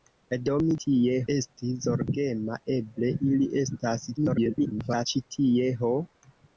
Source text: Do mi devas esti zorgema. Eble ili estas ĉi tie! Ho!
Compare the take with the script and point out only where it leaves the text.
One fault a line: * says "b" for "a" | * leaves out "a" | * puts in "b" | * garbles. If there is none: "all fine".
* says "tie" for "devas"
* garbles